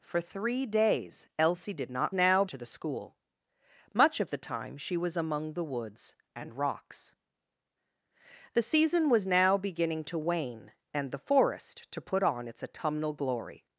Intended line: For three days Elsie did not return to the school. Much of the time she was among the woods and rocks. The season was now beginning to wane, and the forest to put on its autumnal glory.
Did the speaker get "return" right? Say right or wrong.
wrong